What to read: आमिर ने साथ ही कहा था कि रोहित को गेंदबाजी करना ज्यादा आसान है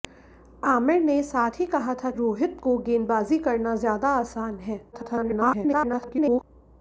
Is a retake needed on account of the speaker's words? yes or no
yes